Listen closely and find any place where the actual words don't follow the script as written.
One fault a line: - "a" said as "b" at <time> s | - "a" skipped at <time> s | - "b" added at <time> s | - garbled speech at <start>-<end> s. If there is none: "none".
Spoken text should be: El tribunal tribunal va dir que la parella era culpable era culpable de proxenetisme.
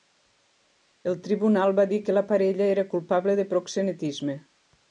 - "tribunal" skipped at 1.8 s
- "era culpable" skipped at 3.4 s